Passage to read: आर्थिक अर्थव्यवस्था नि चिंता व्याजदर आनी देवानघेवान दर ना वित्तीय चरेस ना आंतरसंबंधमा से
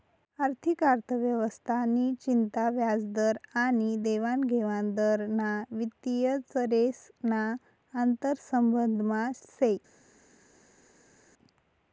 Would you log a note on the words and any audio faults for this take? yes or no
no